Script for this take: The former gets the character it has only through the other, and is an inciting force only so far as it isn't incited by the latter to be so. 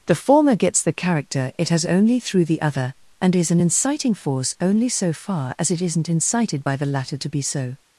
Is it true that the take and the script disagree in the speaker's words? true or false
false